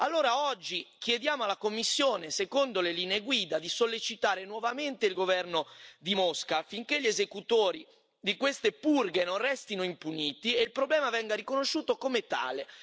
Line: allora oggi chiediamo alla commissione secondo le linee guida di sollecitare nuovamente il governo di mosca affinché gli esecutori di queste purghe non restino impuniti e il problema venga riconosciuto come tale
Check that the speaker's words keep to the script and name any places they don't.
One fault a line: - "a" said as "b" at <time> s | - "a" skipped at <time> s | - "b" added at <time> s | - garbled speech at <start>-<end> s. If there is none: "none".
none